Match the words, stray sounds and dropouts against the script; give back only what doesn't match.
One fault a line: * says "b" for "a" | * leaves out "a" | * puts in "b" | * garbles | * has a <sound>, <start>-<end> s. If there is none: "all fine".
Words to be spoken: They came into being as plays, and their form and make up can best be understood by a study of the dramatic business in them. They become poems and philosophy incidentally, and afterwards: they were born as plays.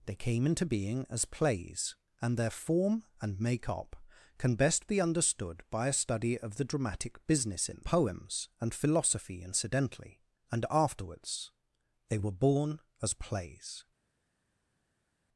* leaves out "them They become"